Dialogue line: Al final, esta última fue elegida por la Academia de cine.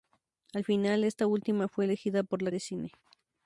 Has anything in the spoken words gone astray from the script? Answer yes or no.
yes